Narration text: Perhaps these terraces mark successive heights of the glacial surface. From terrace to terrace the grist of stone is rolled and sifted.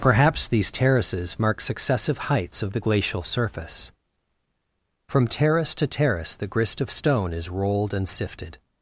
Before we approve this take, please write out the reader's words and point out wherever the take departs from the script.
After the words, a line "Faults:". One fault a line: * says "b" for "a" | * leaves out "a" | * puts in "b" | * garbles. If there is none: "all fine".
Perhaps these terraces mark successive heights of the glacial surface. From terrace to terrace the grist of stone is rolled and sifted.
Faults:
all fine